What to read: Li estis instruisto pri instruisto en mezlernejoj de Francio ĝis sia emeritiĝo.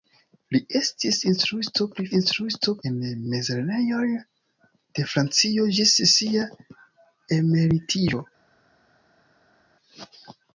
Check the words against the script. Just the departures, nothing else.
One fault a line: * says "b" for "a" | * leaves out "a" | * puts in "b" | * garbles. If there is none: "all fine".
all fine